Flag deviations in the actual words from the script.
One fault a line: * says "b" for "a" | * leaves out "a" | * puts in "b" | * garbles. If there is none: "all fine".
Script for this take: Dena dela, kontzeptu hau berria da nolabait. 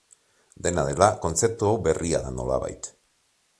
all fine